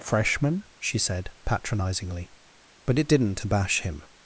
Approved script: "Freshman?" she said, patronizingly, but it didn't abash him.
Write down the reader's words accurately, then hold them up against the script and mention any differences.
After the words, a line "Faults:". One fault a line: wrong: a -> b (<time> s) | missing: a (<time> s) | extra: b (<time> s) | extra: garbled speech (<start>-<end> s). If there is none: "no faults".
"Freshman?" she said, patronizingly, but it didn't abash him.
Faults:
no faults